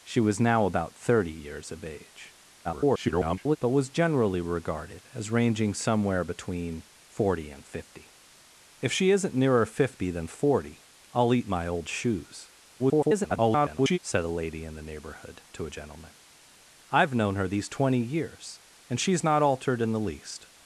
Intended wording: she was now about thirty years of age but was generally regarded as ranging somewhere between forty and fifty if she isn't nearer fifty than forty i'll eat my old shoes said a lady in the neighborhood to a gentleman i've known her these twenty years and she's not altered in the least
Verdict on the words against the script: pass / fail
fail